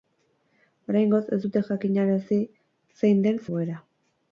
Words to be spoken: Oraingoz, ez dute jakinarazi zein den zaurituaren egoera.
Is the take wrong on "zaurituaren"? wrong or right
wrong